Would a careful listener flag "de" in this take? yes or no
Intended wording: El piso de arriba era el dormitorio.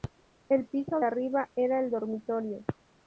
yes